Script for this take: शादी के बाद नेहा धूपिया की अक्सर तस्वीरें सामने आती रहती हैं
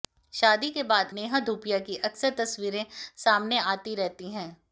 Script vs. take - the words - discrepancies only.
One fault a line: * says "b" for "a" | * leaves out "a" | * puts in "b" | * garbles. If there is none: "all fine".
all fine